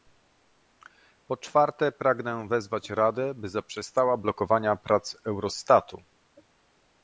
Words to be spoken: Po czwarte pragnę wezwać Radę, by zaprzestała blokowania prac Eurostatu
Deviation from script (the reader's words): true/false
false